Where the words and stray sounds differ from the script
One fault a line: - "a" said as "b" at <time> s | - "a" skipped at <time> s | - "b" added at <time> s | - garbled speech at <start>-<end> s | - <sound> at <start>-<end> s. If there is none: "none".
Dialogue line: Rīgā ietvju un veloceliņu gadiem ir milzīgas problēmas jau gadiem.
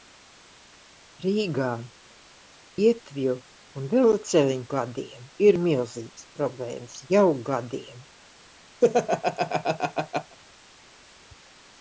- laugh at 8.8-10.4 s